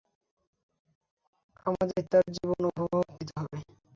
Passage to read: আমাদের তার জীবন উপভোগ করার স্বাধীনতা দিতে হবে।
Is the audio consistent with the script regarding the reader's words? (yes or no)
no